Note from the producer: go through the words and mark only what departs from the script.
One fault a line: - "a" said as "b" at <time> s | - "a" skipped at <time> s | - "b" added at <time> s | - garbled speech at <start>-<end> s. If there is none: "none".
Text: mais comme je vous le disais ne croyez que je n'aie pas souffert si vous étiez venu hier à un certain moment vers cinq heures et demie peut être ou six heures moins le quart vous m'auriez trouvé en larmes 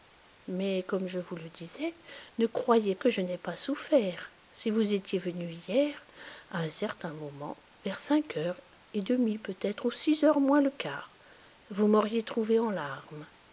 none